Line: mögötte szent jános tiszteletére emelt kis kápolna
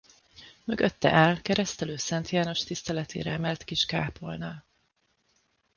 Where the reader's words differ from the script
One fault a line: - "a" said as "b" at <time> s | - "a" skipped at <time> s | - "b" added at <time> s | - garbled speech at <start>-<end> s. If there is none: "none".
- "áll keresztelő" added at 1.1 s